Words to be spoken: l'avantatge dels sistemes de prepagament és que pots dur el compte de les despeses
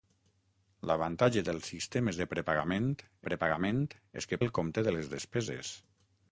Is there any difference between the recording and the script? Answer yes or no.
yes